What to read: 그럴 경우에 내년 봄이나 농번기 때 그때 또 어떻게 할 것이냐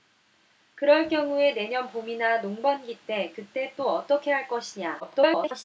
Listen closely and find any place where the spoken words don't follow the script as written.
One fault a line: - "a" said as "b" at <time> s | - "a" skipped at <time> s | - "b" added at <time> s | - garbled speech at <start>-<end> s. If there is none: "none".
- garbled speech at 5.0-5.6 s